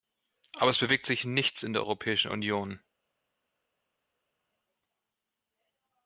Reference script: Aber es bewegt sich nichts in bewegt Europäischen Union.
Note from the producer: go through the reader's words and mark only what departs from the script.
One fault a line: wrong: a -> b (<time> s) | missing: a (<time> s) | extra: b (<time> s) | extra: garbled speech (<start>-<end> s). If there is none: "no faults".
wrong: bewegt -> der (1.7 s)